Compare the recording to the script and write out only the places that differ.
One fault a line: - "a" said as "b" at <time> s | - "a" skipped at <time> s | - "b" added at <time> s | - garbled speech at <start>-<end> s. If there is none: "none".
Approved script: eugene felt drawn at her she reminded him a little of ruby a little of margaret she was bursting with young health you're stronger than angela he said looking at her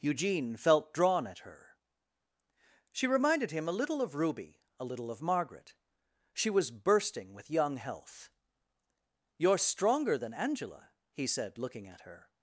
none